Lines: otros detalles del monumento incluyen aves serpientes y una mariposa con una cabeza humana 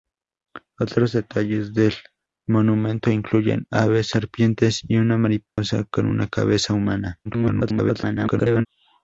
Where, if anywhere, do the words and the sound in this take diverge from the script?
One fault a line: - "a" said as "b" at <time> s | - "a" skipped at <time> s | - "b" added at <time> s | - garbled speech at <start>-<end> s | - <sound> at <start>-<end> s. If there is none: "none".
- dropout at 5.5-5.6 s
- garbled speech at 7.2-8.7 s